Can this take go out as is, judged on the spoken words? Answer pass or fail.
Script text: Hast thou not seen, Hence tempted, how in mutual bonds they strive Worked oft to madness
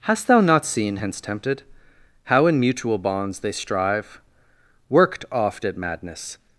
fail